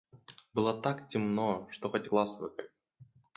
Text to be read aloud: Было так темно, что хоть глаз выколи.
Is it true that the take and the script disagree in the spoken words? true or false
false